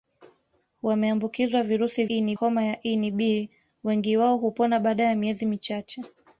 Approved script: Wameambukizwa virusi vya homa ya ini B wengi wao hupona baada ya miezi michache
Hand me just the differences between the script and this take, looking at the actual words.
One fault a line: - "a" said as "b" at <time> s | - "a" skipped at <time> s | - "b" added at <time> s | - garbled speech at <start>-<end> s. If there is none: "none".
- "vya" said as "ini" at 2.1 s